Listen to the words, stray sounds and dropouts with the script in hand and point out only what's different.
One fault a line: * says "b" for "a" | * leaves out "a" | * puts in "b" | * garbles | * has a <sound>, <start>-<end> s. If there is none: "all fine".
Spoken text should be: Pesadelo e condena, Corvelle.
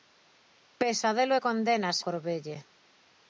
all fine